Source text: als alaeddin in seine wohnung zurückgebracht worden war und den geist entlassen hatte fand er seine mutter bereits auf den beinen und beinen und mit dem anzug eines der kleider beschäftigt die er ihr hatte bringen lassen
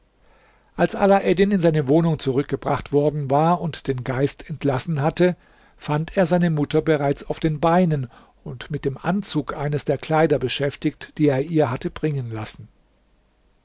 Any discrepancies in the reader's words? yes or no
yes